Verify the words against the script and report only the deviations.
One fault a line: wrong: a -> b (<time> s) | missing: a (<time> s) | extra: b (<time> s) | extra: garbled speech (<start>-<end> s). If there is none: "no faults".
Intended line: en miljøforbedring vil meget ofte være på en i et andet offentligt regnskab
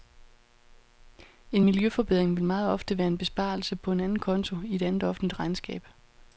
extra: en besparelse (3.1 s)
extra: anden konto (4.0 s)